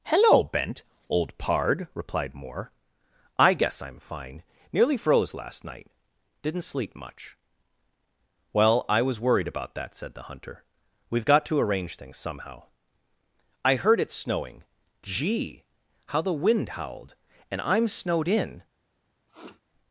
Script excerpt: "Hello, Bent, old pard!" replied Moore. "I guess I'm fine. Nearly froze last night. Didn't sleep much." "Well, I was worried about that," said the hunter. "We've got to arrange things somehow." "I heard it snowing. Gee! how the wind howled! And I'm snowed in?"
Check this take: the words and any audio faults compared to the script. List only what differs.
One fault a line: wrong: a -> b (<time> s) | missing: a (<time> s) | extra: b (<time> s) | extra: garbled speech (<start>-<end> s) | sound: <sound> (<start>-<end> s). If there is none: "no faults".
sound: sniff (19.3-19.6 s)